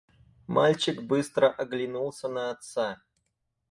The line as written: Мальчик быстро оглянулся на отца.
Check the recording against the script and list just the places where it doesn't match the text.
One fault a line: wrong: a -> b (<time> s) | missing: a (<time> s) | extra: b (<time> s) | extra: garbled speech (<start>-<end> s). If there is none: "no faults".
no faults